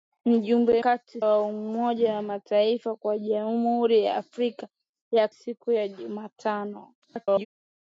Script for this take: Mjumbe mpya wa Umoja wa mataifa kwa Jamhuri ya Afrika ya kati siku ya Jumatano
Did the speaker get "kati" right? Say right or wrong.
wrong